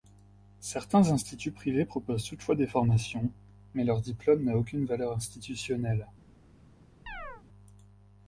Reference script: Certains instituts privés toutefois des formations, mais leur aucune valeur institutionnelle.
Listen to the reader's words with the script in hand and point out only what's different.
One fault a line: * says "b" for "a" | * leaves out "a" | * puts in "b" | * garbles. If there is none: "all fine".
* puts in "proposent"
* puts in "diplôme n'a"